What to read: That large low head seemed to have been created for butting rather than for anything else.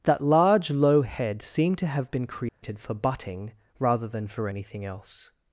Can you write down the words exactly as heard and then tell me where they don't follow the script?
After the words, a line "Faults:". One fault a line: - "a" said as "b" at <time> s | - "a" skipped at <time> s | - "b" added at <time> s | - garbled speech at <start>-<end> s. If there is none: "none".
That large low head seemed to have been created for butting rather than for anything else.
Faults:
none